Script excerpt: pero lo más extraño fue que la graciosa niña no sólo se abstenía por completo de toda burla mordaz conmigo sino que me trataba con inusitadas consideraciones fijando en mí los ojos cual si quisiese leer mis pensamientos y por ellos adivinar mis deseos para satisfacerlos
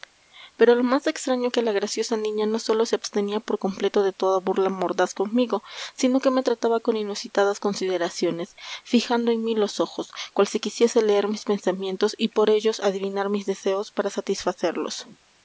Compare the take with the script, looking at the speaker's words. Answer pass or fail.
fail